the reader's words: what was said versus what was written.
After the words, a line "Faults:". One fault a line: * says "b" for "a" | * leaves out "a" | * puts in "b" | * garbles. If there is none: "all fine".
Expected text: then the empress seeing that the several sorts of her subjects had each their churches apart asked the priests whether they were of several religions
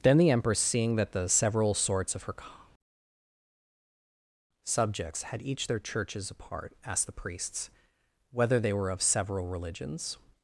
then the empress seeing that the several sorts of her subjects had each their churches apart asked the priests whether they were of several religions
Faults:
all fine